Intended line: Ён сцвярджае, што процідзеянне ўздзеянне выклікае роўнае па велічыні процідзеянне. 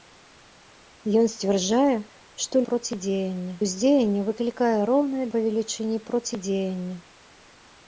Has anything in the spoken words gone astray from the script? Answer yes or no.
no